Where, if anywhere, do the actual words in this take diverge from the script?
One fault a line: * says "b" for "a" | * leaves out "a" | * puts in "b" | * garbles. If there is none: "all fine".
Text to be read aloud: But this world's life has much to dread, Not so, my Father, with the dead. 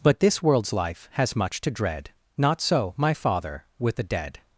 all fine